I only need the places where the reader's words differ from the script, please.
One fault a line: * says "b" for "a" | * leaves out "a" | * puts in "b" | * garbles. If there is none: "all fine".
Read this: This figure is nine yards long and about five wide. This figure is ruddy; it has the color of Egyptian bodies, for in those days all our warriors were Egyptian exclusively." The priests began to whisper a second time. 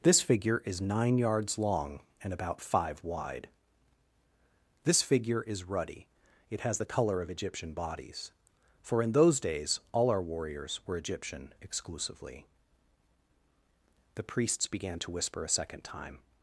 all fine